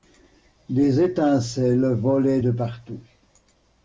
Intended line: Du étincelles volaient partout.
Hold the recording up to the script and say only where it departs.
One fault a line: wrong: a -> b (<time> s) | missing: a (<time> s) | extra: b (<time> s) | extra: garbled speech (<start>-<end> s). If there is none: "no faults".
wrong: Du -> Des (0.7 s)
extra: de (2.4 s)